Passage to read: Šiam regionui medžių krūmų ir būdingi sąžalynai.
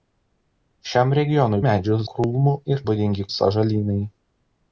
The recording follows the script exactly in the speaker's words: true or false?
true